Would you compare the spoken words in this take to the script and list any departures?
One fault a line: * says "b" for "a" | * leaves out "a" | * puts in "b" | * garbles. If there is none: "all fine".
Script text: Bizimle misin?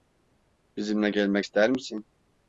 * puts in "gelmek ister"